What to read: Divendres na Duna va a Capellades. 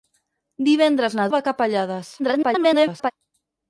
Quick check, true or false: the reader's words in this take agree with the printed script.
false